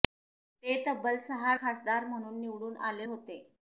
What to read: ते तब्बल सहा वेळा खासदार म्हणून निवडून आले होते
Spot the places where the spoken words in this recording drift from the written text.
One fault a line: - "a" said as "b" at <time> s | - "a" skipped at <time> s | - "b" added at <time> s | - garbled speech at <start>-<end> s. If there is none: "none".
- "वेळा" skipped at 1.5 s